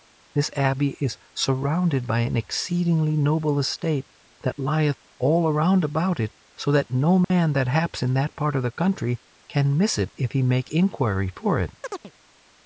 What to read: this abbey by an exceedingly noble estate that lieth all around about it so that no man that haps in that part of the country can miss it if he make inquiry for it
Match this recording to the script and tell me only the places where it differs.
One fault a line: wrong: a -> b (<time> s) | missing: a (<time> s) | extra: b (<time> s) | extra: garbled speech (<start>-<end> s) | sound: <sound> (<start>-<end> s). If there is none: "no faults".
extra: is surrounded (1.0 s)
sound: dropout (7.2-7.3 s)
sound: chirp (11.8-12.1 s)